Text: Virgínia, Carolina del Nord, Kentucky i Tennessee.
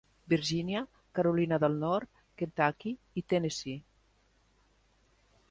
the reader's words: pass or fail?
pass